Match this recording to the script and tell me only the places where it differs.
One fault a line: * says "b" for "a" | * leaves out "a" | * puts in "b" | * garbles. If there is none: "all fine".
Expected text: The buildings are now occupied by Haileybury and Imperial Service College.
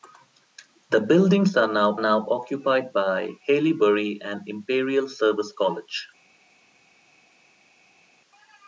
* puts in "now"